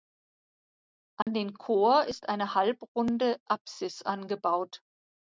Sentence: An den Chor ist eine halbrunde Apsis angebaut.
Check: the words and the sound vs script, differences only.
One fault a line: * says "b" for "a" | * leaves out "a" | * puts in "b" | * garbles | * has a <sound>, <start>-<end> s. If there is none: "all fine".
* has a dropout, 1.2-1.3 s